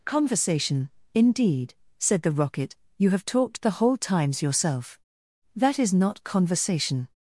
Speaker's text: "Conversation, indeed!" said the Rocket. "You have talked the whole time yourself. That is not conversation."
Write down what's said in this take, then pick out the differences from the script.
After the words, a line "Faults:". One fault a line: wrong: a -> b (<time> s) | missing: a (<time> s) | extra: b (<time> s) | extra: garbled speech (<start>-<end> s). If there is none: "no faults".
"Conversation, indeed!" said the Rocket. "You have talked the whole times yourself. That is not conversation."
Faults:
wrong: time -> times (4.0 s)